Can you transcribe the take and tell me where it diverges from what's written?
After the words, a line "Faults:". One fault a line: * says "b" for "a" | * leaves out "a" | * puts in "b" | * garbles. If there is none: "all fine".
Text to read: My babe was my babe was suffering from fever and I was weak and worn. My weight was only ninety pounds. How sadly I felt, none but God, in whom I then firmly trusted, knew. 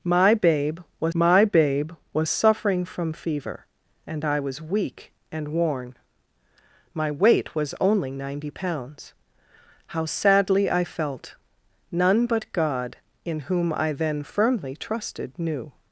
My babe was my babe was suffering from fever and I was weak and worn. My weight was only ninety pounds. How sadly I felt, none but God, in whom I then firmly trusted, knew.
Faults:
all fine